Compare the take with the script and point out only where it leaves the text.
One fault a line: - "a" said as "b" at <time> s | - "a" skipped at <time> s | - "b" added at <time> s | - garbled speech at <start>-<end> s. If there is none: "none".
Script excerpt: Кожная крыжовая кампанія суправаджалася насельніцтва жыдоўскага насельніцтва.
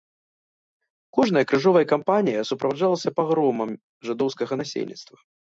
- "насельніцтва" said as "пагромам" at 3.2 s